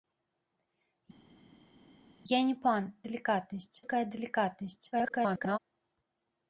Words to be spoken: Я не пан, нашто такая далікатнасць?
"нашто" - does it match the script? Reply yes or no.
no